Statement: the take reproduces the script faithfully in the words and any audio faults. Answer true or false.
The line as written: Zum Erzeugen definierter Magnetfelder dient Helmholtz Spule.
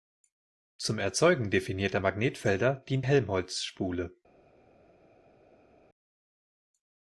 true